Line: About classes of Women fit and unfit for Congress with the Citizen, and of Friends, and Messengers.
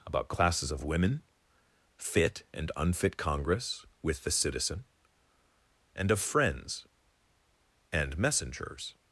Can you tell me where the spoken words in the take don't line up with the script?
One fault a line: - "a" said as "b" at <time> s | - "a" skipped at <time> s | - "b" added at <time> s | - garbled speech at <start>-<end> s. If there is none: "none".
- "for" skipped at 3.2 s